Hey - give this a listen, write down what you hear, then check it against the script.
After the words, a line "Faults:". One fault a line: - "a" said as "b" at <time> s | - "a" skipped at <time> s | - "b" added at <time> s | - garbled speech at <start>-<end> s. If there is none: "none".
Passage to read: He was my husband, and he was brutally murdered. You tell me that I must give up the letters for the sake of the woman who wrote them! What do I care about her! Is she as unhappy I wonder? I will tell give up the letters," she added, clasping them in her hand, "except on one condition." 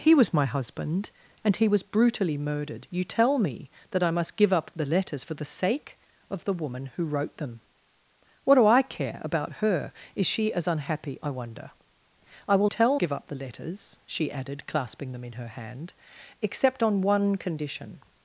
He was my husband, and he was brutally murdered. You tell me that I must give up the letters for the sake of the woman who wrote them! What do I care about her! Is she as unhappy I wonder? I will tell give up the letters," she added, clasping them in her hand, "except on one condition."
Faults:
none